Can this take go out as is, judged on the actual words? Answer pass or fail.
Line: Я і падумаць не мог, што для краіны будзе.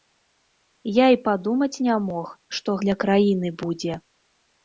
pass